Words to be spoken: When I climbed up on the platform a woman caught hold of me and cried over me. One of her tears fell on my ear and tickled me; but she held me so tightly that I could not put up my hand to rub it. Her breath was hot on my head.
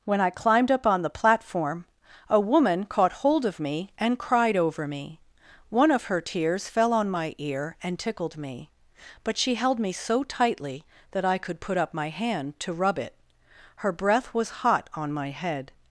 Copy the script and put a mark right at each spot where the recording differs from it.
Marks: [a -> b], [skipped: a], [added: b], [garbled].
When I climbed up on the platform a woman caught hold of me and cried over me. One of her tears fell on my ear and tickled me; but she held me so tightly that I could [skipped: not] put up my hand to rub it. Her breath was hot on my head.